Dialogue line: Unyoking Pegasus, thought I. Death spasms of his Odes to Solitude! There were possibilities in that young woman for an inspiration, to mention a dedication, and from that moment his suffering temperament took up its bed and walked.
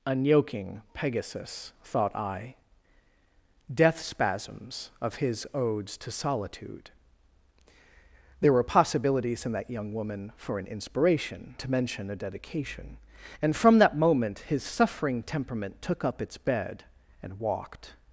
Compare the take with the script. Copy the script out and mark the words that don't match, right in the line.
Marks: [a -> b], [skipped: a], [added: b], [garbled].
Unyoking Pegasus, thought I. Death spasms of his Odes to Solitude! There were possibilities in that young woman for an inspiration, to mention a dedication, and from that moment his suffering temperament took up its bed and walked.